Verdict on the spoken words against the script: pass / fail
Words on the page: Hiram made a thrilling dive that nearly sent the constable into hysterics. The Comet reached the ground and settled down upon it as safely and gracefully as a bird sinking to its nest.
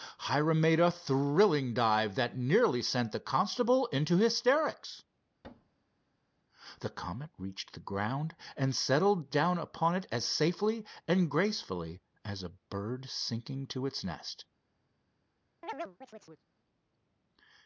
pass